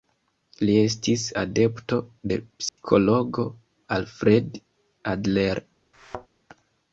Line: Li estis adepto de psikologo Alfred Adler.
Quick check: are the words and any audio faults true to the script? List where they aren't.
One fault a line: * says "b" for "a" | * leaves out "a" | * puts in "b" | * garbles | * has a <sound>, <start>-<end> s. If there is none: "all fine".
* has a dropout, 2.7-2.8 s
* has a thud, 5.9-6.3 s